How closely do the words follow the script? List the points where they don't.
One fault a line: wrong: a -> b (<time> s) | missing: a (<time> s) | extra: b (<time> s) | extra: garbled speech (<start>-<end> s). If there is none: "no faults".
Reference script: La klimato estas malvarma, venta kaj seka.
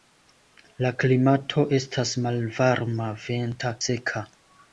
missing: kaj (3.8 s)